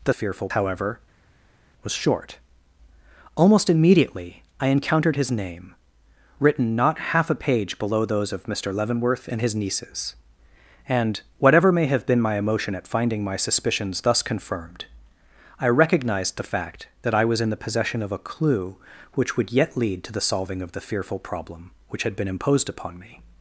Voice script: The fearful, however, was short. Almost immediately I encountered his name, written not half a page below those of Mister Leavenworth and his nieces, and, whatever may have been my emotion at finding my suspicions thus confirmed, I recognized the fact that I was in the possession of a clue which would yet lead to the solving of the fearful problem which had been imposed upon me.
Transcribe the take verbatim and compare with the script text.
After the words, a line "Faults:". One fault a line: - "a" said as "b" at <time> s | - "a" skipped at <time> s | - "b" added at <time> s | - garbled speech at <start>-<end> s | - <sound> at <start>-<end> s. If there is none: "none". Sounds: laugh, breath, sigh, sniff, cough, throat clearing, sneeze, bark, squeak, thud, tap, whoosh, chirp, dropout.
The fearful, however, was short. Almost immediately I encountered his name, written not half a page below those of Mister Leavenworth and his nieces, and, whatever may have been my emotion at finding my suspicions thus confirmed, I recognized the fact that I was in the possession of a clue which would yet lead to the solving of the fearful problem which had been imposed upon me.
Faults:
none